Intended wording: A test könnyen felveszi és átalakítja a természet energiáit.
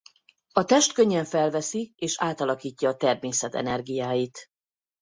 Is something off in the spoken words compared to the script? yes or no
no